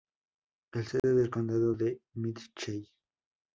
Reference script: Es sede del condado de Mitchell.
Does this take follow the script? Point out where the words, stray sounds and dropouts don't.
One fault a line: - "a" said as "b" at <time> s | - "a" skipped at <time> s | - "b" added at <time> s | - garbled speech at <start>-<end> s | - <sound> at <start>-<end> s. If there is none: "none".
- dropout at 1.0-1.0 s